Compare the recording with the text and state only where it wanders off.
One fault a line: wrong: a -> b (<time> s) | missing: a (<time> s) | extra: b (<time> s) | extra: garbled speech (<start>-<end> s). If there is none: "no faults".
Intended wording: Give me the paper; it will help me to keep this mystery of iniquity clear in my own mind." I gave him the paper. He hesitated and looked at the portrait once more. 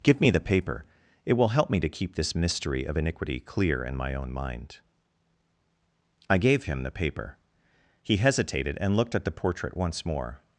no faults